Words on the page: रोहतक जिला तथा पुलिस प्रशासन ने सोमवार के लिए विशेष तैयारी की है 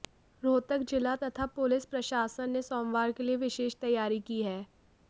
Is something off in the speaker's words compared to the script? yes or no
no